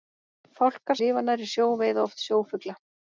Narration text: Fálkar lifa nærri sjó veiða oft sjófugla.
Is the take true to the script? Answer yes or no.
yes